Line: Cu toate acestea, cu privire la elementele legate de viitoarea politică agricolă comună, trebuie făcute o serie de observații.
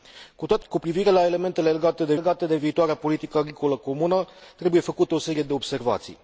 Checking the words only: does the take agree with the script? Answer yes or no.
no